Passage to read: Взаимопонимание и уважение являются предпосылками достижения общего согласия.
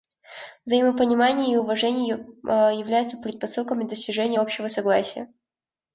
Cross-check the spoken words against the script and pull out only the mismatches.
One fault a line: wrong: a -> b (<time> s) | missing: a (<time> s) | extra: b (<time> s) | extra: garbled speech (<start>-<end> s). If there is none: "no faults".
no faults